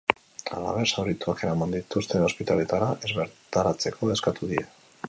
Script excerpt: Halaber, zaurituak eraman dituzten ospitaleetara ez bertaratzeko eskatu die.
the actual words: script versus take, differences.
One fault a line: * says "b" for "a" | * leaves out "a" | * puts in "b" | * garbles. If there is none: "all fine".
all fine